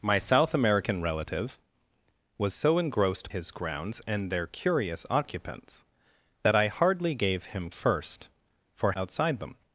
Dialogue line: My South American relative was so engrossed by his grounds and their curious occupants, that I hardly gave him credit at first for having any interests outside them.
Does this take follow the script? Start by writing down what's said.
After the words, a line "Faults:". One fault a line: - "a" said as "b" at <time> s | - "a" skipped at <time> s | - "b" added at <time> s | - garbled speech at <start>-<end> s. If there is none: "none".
My South American relative was so engrossed his grounds and their curious occupants, that I hardly gave him first for outside them.
Faults:
- "by" skipped at 3.3 s
- "credit at" skipped at 7.7 s
- "having any interests" skipped at 8.9 s